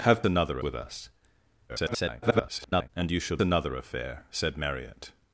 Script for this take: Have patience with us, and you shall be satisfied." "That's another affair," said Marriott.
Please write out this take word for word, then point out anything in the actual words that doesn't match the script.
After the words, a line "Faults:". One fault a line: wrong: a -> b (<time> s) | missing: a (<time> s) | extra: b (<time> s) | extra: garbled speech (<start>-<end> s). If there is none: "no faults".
Have another with us, [garbled] and you shall another affair," said Marriott.
Faults:
wrong: patience -> another (0.2 s)
extra: garbled speech (1.7-2.9 s)
missing: be satisfied That's (3.4 s)